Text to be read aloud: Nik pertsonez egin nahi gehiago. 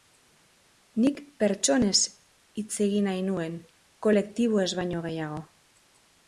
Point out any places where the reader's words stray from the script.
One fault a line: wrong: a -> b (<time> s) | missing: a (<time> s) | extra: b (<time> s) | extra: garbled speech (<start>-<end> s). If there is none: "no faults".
extra: hitz (2.6 s)
extra: nuen kolektiboez baino (3.3 s)